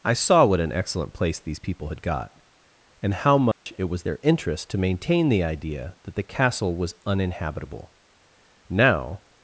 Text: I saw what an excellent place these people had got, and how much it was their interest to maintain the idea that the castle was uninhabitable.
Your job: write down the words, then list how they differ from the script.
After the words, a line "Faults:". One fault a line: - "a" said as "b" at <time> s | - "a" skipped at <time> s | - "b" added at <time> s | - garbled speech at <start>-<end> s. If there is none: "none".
I saw what an excellent place these people had got, and how much it was their interest to maintain the idea that the castle was uninhabitable. Now
Faults:
- "Now" added at 8.7 s